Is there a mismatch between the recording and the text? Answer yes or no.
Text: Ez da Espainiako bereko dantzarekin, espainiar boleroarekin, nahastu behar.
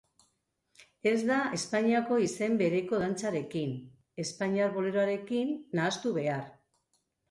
yes